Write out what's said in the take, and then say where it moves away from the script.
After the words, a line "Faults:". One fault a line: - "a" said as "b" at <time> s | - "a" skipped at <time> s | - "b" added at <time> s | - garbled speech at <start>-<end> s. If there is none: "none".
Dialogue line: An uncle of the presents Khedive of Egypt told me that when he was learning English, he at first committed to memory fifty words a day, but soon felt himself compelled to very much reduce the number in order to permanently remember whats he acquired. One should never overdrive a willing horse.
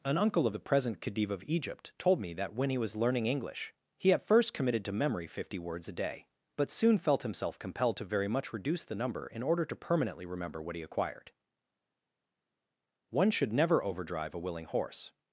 An uncle of the present Khedive of Egypt told me that when he was learning English, he at first committed to memory fifty words a day, but soon felt himself compelled to very much reduce the number in order to permanently remember what he acquired. One should never overdrive a willing horse.
Faults:
- "presents" said as "present" at 0.6 s
- "whats" said as "what" at 10.6 s